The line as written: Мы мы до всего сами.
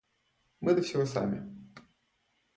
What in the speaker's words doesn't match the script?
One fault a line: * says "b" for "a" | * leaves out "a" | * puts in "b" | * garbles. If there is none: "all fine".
* leaves out "мы"